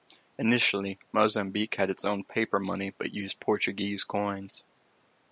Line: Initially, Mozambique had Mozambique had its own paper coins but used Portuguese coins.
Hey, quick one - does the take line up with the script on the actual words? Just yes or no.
no